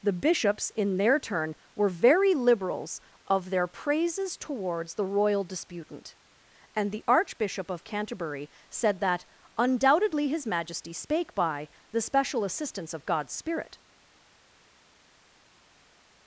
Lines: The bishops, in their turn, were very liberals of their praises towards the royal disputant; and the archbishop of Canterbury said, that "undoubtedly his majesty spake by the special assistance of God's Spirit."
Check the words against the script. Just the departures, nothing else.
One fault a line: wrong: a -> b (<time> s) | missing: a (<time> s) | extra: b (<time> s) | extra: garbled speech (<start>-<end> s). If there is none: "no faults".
no faults